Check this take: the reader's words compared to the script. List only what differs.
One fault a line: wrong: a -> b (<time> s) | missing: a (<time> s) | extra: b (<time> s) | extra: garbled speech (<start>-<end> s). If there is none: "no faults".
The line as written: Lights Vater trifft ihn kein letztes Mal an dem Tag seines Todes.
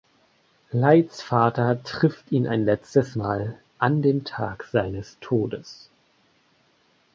wrong: kein -> ein (2.5 s)